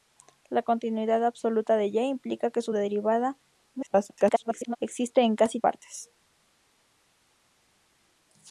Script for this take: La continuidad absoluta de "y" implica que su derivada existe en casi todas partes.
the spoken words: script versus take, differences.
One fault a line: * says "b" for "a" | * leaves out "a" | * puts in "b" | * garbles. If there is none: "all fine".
* garbles
* leaves out "todas"